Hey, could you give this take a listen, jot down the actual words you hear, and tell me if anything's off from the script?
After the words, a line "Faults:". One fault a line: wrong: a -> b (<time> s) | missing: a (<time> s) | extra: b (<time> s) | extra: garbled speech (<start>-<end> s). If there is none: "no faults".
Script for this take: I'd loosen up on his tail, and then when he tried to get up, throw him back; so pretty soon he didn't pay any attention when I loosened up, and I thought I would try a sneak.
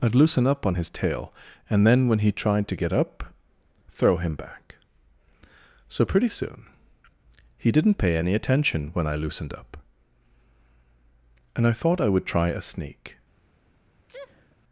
I'd loosen up on his tail, and then when he tried to get up, throw him back; so pretty soon he didn't pay any attention when I loosened up, and I thought I would try a sneak.
Faults:
no faults